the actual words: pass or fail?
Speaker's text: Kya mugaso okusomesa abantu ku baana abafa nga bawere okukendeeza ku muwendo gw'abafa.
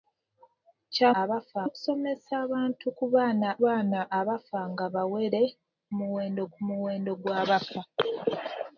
fail